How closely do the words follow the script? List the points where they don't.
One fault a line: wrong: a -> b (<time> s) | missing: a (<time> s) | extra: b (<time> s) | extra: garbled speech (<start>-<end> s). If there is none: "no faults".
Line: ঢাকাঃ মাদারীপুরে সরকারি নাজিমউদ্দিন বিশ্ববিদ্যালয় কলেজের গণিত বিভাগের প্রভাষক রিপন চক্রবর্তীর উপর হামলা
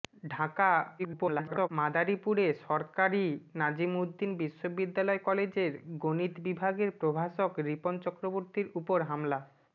extra: garbled speech (1.0-1.7 s)